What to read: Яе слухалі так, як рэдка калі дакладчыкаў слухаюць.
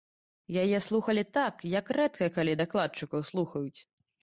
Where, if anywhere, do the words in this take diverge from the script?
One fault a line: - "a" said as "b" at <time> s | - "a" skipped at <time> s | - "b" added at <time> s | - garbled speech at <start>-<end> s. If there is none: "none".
none